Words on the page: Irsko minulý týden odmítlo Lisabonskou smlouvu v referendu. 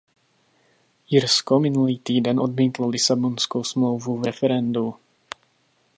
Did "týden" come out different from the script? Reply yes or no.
no